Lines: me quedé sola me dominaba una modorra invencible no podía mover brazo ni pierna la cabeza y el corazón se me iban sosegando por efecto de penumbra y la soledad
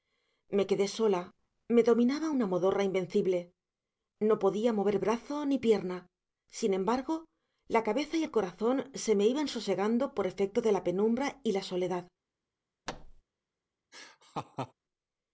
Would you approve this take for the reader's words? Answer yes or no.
no